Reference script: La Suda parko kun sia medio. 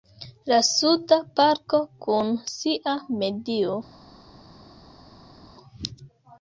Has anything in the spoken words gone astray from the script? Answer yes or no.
no